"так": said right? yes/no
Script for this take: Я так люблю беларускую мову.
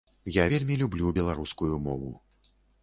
no